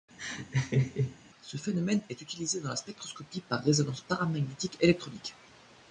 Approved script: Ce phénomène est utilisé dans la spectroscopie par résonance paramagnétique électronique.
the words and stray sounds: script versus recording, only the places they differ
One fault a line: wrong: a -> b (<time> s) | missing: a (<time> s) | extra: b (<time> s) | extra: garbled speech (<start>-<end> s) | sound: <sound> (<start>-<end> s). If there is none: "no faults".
sound: laugh (0.2-1.2 s)